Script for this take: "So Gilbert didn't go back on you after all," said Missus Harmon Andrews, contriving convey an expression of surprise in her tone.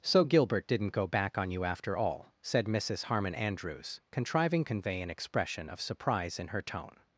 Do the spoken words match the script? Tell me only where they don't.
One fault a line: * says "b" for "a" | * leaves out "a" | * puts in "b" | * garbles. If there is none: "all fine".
all fine